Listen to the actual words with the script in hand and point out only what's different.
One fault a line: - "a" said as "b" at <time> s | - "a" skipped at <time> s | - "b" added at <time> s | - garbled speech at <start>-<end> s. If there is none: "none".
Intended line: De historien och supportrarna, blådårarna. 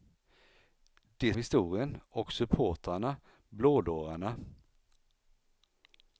none